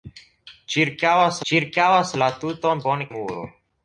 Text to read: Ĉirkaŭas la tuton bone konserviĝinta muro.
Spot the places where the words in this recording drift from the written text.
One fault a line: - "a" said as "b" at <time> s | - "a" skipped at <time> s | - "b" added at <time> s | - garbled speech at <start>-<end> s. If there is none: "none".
- "ĉirkaŭas" added at 1.5 s
- "konserviĝinta" skipped at 3.1 s